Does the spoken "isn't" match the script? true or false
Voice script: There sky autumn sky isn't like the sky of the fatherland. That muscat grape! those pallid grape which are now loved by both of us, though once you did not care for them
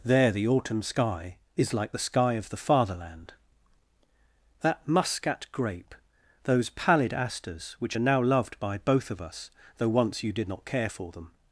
false